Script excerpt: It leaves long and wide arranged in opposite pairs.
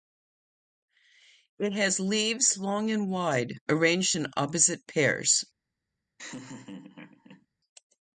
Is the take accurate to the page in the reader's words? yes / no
no